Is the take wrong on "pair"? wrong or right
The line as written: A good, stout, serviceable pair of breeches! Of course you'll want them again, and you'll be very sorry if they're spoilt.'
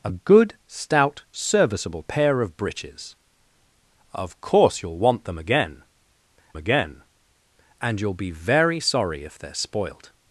right